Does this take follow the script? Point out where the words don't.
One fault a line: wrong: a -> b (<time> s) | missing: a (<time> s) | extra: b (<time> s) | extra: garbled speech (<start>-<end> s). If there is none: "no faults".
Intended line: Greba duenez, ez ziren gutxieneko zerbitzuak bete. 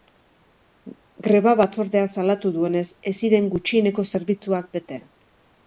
extra: batzordeak salatu (1.6 s)